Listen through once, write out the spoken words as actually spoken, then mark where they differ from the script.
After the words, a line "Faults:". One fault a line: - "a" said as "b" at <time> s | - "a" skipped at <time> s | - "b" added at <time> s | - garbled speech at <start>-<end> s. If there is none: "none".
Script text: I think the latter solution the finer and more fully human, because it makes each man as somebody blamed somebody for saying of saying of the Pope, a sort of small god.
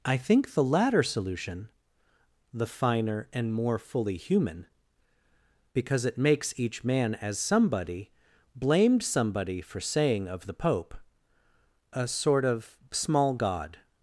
I think the latter solution the finer and more fully human, because it makes each man as somebody blamed somebody for saying of the Pope, a sort of small god.
Faults:
- "saying of" skipped at 10.5 s